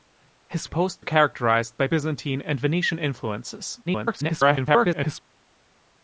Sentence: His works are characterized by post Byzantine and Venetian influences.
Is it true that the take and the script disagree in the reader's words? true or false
true